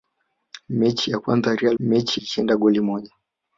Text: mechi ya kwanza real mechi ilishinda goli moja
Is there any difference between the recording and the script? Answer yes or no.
no